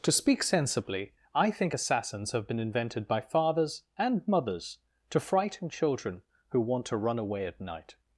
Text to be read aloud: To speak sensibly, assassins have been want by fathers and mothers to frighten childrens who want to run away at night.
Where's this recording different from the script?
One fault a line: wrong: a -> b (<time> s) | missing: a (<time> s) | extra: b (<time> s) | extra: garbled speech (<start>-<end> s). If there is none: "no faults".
extra: I think (1.4 s)
wrong: want -> invented (2.6 s)
wrong: childrens -> children (5.7 s)